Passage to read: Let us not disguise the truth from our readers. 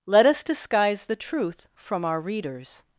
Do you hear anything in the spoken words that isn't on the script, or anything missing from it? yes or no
yes